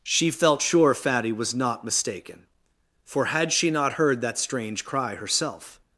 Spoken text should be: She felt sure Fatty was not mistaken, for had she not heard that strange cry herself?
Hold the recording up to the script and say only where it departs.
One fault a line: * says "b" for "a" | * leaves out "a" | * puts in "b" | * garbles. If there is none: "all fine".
all fine